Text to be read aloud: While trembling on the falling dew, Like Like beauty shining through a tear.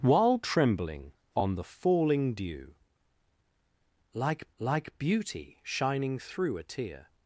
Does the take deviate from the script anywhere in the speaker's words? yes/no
no